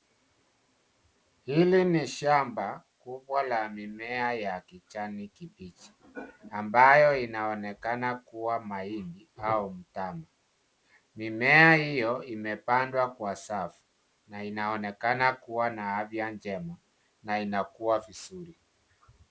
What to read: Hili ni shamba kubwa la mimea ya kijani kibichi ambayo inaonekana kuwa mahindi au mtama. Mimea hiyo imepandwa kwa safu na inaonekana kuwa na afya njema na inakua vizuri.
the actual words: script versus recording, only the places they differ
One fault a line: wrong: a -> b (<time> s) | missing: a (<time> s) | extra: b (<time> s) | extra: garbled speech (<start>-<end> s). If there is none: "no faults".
no faults